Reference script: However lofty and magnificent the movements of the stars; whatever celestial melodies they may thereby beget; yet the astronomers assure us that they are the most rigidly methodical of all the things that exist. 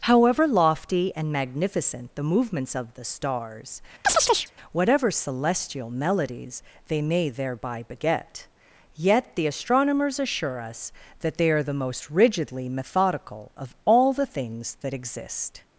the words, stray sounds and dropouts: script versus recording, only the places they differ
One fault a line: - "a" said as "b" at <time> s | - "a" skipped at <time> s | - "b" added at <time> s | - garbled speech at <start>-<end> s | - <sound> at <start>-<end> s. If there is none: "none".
- chirp at 4.0-4.5 s